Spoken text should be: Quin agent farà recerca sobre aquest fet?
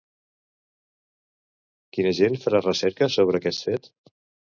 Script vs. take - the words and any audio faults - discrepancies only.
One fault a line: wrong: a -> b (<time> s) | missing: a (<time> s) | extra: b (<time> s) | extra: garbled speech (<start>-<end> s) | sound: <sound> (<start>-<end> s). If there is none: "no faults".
no faults